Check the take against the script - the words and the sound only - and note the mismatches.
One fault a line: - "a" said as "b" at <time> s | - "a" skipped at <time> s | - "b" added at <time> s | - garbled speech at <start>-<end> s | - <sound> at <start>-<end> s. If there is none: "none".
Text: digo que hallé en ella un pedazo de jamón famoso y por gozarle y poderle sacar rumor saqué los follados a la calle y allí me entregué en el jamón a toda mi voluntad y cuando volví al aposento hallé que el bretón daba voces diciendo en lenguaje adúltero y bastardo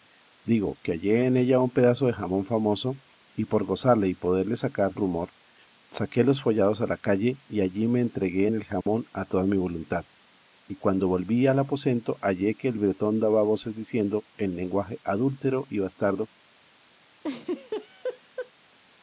- dropout at 8.8-8.9 s
- laugh at 17.2-18.5 s